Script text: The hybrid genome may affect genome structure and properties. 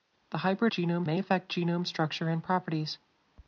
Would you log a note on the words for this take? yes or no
no